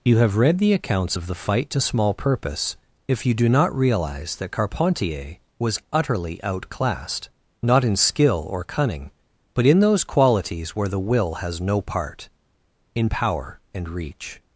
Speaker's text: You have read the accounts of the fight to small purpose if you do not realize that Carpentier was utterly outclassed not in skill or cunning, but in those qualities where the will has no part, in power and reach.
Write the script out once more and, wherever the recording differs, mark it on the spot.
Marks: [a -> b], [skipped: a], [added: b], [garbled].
You have read the accounts of the fight to small purpose if you do not realize that Carpentier was utterly outclassed not in skill or cunning, but in those qualities where the will has no part, in power and reach.